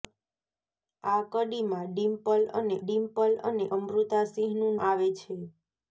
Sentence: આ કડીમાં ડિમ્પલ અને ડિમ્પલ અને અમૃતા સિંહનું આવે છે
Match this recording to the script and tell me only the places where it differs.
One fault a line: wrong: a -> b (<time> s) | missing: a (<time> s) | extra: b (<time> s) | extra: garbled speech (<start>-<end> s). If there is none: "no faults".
no faults